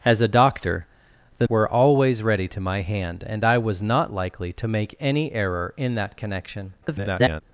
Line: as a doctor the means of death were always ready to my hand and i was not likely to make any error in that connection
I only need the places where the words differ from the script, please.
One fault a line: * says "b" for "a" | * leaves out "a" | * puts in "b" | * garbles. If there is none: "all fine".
* leaves out "means of death"
* garbles